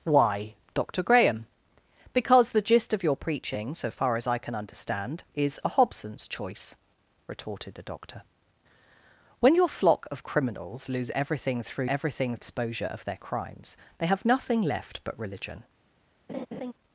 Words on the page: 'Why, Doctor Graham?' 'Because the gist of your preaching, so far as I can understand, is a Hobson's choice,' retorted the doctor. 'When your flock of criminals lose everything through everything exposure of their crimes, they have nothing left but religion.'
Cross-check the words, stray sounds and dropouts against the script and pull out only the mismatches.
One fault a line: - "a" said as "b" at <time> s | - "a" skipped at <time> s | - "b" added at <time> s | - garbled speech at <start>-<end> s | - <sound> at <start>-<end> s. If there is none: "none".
- laugh at 16.3-16.7 s